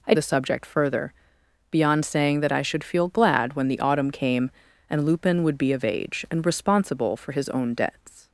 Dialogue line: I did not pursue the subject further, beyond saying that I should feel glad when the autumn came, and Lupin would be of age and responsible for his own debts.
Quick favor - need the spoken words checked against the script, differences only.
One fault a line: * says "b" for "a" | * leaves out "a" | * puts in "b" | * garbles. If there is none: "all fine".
* leaves out "did not pursue"